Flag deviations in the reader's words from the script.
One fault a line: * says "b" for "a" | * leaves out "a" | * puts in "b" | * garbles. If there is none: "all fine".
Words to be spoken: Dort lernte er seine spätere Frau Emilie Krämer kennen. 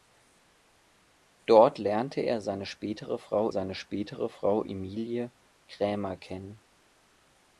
* puts in "seine spätere Frau"